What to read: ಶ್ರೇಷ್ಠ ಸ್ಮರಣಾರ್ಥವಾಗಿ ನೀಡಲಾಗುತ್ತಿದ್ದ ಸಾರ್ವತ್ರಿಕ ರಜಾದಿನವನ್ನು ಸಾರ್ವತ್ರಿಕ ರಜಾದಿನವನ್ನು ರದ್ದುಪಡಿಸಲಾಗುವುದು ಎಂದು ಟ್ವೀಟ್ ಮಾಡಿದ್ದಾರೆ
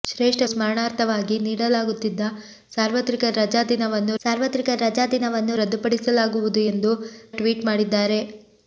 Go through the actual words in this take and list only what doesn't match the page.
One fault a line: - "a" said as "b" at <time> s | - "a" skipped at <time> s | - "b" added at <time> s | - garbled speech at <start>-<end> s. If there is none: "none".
none